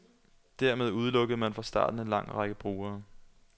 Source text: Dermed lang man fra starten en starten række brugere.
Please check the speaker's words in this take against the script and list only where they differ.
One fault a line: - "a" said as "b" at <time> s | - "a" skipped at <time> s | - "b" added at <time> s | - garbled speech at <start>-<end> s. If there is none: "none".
- "lang" said as "udelukkede" at 0.9 s
- "starten" said as "lang" at 2.1 s